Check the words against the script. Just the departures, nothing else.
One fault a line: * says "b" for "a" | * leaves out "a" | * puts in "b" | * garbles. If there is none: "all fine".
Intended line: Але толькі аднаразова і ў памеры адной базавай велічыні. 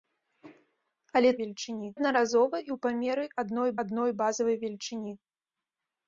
* says "велічыні" for "толькі"
* puts in "адной"